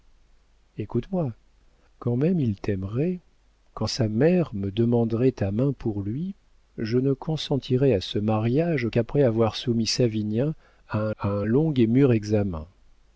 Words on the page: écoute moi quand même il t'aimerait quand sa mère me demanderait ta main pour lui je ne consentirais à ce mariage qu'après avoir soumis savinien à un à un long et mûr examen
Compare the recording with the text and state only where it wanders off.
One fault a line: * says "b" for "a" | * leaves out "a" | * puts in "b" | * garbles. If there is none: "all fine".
all fine